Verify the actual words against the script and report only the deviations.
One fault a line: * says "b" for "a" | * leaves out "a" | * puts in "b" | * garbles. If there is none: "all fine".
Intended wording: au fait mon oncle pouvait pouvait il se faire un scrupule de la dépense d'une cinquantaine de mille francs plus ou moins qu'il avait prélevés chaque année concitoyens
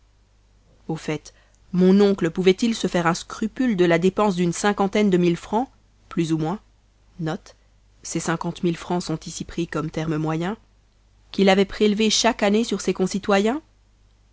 * leaves out "pouvait"
* puts in "sur ses"